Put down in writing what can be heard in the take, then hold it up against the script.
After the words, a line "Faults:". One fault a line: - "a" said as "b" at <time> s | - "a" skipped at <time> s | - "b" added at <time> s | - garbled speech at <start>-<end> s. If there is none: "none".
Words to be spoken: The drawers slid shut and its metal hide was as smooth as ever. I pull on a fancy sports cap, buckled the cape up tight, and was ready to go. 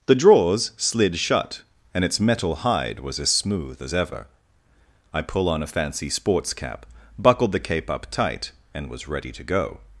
The drawers slid shut and its metal hide was as smooth as ever. I pull on a fancy sports cap, buckled the cape up tight, and was ready to go.
Faults:
none